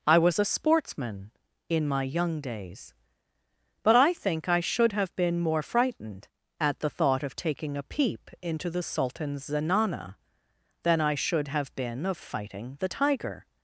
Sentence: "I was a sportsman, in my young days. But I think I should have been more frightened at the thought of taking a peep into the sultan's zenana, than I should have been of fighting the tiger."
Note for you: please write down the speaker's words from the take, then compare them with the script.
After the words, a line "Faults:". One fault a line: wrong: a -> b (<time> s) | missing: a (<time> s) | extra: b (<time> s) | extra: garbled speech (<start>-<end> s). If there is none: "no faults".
"I was a sportsman, in my young days. But I think I should have been more frightened at the thought of taking a peep into the sultan's zenana, than I should have been of fighting the tiger."
Faults:
no faults